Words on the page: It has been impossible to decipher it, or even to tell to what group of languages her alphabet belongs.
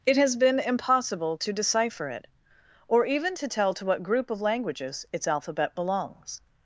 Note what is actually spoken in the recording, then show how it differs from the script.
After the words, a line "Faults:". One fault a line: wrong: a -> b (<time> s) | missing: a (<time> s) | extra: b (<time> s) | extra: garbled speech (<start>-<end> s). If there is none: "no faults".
It has been impossible to decipher it, or even to tell to what group of languages its alphabet belongs.
Faults:
wrong: her -> its (5.1 s)